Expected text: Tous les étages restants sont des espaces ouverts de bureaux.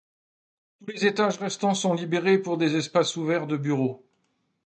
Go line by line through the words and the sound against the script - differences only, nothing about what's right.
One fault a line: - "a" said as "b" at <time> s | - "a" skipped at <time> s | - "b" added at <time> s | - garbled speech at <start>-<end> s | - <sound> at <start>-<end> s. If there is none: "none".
- "libérés pour" added at 1.9 s